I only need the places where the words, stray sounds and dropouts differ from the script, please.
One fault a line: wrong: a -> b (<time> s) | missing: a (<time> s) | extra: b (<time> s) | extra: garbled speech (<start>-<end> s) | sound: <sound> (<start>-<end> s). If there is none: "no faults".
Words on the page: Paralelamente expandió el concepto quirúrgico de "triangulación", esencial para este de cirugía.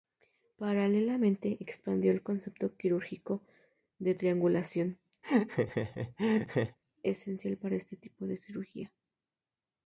sound: laugh (5.2-6.8 s)
extra: tipo (8.0 s)